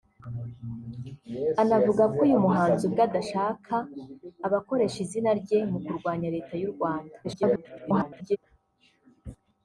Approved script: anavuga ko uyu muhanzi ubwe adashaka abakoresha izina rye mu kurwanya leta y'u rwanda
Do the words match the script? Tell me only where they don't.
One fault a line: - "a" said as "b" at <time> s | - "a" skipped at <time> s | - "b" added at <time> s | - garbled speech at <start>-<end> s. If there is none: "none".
- garbled speech at 7.2-8.4 s